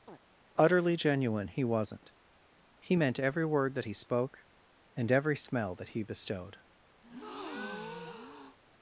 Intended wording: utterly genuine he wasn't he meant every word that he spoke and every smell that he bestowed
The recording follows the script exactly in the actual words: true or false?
true